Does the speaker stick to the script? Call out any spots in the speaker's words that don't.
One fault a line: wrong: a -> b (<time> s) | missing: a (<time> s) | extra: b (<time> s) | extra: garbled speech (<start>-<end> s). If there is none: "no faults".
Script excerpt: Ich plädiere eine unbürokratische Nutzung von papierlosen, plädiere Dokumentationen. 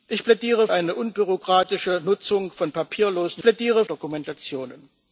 no faults